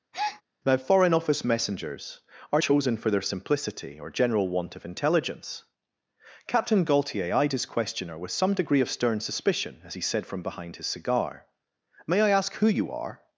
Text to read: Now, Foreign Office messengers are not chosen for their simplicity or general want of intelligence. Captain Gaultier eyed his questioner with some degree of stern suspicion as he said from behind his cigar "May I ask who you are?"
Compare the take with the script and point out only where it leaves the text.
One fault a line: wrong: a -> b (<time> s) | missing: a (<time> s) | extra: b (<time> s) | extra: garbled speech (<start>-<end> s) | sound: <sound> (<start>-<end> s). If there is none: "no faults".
sound: breath (0.1-0.4 s)
missing: not (2.6 s)